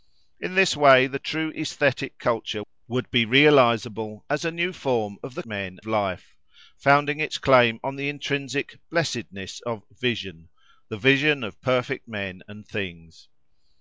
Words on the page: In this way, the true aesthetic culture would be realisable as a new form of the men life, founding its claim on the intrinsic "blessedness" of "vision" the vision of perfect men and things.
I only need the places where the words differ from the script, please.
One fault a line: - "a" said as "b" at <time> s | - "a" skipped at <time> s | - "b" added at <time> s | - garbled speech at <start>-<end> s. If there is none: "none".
none